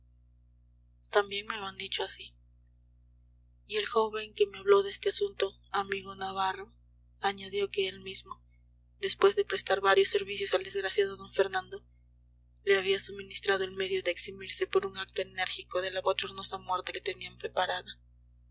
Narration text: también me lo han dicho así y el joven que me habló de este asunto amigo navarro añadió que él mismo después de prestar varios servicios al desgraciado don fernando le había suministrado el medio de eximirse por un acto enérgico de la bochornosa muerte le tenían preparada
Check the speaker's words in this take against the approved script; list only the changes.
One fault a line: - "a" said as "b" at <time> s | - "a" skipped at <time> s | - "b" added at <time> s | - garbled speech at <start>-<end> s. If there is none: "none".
none